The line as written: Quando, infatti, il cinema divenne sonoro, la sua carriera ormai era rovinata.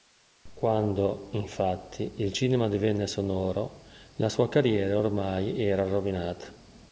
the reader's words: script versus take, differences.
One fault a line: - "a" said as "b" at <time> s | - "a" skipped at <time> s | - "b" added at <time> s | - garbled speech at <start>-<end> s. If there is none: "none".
none